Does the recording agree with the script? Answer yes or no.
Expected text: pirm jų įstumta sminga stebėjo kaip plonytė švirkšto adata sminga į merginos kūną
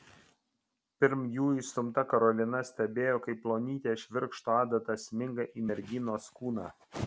no